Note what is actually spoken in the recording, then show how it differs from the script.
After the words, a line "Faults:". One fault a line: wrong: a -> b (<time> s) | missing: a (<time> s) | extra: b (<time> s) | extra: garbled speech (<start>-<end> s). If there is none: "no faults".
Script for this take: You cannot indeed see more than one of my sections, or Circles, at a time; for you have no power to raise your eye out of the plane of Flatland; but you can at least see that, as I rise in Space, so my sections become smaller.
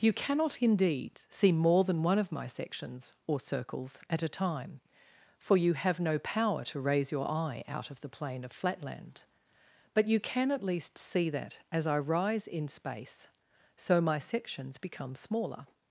You cannot indeed see more than one of my sections, or Circles, at a time; for you have no power to raise your eye out of the plane of Flatland; but you can at least see that, as I rise in Space, so my sections become smaller.
Faults:
no faults